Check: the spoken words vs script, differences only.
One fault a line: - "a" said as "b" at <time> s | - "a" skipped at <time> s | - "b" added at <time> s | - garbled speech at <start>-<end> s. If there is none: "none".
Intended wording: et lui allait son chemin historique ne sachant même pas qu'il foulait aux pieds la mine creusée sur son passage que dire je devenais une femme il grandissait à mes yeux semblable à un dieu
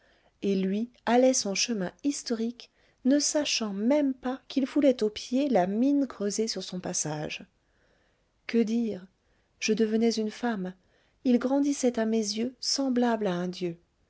none